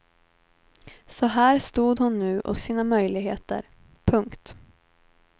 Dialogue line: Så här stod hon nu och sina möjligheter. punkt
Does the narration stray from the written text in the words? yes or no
no